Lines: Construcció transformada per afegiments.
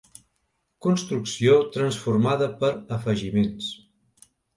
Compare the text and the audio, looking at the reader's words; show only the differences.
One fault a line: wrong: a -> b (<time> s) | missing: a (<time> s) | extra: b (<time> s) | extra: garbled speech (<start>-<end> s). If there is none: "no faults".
no faults